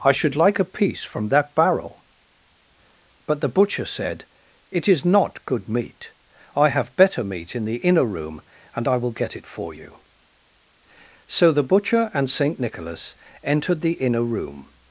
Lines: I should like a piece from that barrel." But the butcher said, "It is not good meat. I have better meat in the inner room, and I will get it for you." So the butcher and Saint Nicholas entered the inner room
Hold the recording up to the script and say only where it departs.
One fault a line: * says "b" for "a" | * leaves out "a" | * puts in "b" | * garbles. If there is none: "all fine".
all fine